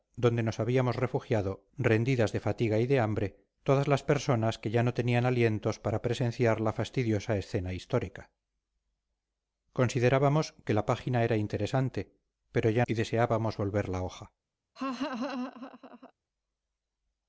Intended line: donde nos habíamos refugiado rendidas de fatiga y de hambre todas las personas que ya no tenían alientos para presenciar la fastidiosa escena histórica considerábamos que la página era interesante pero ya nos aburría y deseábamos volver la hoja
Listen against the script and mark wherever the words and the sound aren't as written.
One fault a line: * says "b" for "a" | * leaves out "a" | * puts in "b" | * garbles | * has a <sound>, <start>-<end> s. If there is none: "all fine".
* leaves out "nos aburría"
* has a laugh, 14.8-16.1 s